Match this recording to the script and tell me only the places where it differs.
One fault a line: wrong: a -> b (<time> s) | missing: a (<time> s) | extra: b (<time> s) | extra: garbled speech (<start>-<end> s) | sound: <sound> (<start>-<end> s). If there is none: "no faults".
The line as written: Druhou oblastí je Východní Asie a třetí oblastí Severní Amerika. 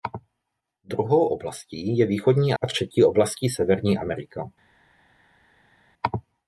missing: Asie (2.5 s)